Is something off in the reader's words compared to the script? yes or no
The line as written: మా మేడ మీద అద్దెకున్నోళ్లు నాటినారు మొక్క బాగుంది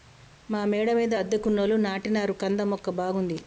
yes